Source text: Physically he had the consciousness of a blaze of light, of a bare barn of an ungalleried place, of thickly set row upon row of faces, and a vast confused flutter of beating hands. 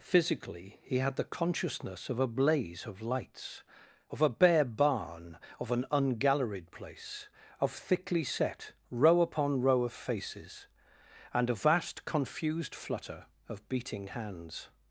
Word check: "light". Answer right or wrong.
wrong